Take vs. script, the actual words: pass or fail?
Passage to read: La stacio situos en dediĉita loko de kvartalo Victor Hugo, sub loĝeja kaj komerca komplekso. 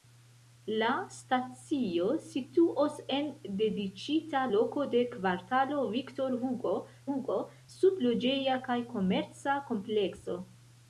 fail